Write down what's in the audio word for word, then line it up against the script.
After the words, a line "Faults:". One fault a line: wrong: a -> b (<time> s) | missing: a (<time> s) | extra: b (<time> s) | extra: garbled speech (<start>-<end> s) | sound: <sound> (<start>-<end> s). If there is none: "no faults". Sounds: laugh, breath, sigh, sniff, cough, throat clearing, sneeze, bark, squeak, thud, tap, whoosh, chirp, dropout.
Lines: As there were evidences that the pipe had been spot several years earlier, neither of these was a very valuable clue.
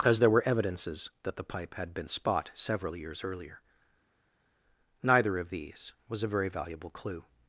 As there were evidences that the pipe had been spot several years earlier, neither of these was a very valuable clue.
Faults:
no faults